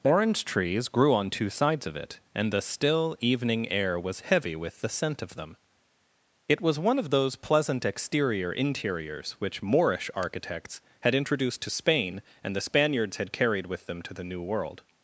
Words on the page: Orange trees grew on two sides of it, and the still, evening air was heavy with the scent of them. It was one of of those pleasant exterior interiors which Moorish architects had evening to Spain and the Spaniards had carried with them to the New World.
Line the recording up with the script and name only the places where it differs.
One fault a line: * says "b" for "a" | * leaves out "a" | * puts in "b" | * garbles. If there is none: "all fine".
* leaves out "of"
* says "introduced" for "evening"